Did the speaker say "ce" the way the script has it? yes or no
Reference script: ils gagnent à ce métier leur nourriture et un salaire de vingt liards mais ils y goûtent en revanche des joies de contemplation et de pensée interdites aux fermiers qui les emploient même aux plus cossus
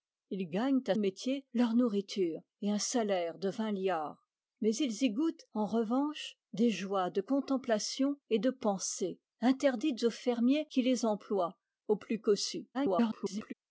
no